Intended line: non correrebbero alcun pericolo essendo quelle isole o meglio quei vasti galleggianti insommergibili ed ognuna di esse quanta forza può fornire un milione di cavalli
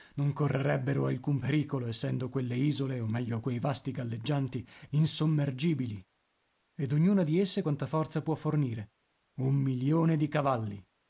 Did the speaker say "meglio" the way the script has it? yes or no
yes